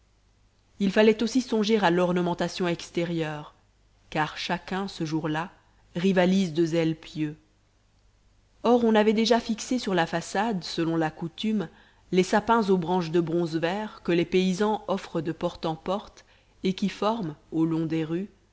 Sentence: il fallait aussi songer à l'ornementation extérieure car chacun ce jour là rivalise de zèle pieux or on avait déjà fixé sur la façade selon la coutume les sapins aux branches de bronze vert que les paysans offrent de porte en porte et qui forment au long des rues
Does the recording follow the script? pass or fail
pass